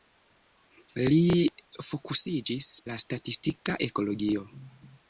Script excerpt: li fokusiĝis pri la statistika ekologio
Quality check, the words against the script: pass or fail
fail